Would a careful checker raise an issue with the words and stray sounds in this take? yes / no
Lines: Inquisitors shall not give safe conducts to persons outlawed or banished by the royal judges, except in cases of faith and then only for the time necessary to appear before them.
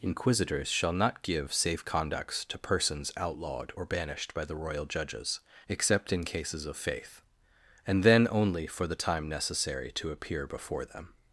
no